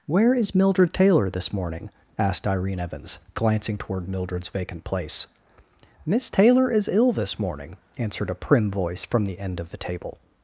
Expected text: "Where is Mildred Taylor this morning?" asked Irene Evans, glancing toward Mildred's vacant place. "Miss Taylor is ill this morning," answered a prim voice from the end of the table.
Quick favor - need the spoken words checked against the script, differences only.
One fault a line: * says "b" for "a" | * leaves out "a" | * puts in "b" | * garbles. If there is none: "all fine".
all fine